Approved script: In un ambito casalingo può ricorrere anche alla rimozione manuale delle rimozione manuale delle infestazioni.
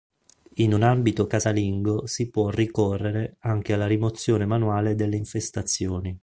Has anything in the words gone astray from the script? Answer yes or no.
yes